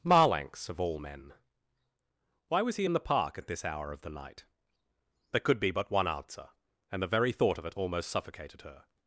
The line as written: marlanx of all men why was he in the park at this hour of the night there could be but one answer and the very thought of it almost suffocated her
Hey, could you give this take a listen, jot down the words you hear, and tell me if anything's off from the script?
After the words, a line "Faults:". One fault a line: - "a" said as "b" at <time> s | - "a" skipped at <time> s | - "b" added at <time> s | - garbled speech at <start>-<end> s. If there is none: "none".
marlanx of all men why was he in the park at this hour of the night there could be but one answer and the very thought of it almost suffocated her
Faults:
none